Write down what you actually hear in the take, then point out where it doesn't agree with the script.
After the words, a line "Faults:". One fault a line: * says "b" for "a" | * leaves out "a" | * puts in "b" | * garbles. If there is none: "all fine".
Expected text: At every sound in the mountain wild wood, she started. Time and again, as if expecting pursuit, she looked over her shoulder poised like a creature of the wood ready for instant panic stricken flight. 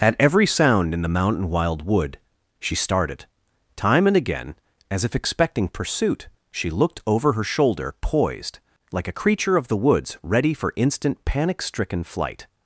At every sound in the mountain wild wood, she started. Time and again, as if expecting pursuit, she looked over her shoulder poised like a creature of the woods ready for instant panic stricken flight.
Faults:
* says "woods" for "wood"